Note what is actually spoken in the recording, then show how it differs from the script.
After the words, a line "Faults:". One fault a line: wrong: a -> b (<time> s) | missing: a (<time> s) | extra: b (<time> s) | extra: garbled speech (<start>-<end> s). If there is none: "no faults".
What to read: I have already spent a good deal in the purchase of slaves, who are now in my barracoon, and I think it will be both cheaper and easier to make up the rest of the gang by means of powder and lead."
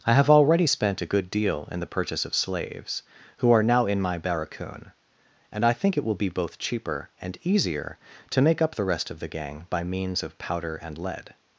I have already spent a good deal in the purchase of slaves, who are now in my barracoon, and I think it will be both cheaper and easier to make up the rest of the gang by means of powder and lead."
Faults:
no faults